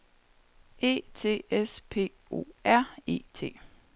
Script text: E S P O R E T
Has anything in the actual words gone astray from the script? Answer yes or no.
yes